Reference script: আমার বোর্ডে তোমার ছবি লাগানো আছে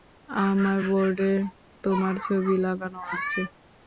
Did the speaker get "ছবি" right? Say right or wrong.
right